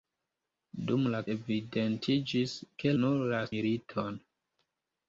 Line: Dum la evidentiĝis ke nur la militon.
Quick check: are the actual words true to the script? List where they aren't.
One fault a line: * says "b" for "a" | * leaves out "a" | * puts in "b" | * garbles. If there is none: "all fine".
all fine